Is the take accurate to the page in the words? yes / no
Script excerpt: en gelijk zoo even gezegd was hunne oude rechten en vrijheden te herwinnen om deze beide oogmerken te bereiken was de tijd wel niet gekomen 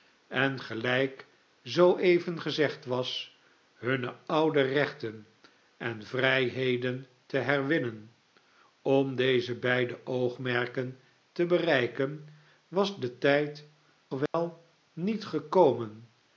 yes